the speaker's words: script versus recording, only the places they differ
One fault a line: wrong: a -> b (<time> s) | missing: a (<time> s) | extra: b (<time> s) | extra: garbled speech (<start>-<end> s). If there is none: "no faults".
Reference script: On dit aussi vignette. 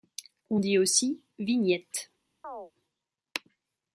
no faults